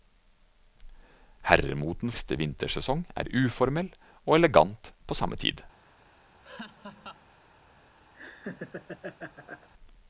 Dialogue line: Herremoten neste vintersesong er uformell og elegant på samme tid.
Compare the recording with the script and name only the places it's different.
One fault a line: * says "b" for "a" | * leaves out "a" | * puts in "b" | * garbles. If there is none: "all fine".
all fine